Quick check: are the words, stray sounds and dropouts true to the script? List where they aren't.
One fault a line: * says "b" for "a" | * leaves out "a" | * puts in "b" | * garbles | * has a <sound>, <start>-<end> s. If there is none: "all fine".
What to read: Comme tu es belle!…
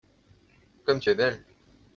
all fine